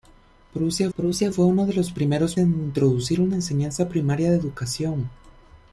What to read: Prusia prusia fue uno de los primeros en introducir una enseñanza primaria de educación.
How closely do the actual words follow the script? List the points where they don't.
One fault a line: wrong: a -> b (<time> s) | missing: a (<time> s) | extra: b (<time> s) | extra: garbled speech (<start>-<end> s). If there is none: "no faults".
no faults